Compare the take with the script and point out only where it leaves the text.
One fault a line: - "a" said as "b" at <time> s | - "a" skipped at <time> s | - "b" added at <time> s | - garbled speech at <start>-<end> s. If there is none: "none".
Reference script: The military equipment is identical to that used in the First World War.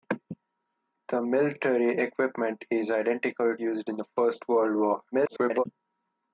- "to that" skipped at 3.5 s
- garbled speech at 5.1-5.6 s